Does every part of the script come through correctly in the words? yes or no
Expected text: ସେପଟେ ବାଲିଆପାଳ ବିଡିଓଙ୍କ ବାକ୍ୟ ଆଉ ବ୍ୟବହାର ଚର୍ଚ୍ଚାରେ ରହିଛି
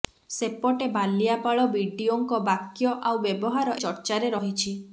yes